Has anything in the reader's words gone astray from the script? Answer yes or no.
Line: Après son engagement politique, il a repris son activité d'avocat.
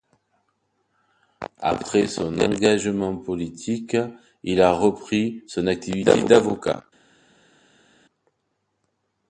no